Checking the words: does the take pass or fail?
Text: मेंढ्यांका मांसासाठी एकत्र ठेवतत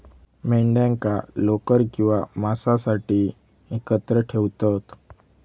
fail